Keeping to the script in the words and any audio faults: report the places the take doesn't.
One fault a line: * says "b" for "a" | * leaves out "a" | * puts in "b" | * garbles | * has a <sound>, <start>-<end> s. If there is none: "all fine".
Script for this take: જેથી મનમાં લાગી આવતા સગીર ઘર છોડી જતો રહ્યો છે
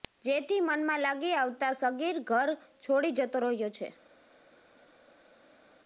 all fine